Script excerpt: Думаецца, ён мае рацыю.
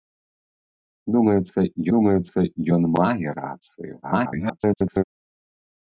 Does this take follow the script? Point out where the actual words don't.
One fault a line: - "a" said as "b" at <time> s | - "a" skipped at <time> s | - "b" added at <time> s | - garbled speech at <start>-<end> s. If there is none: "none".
- "думаецца" added at 2.0 s
- garbled speech at 4.0-5.0 s